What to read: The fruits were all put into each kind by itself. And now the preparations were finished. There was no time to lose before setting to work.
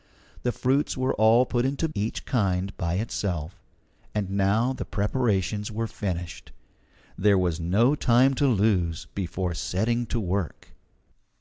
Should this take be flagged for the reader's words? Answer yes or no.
no